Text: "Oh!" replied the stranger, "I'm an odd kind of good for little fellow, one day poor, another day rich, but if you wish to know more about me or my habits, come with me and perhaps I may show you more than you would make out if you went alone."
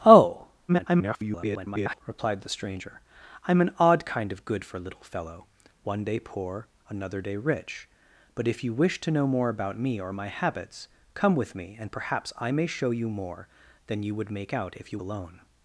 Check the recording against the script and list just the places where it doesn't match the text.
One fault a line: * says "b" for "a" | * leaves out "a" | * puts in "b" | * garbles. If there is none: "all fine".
* garbles
* leaves out "went"